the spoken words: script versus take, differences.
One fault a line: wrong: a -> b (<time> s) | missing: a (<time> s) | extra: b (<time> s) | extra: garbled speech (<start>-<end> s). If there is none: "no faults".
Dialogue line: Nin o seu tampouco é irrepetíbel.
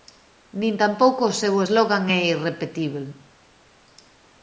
extra: tampouco (0.8 s)
wrong: tampouco -> slogan (1.7 s)